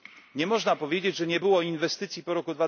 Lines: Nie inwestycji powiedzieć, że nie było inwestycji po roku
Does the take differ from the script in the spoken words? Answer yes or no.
yes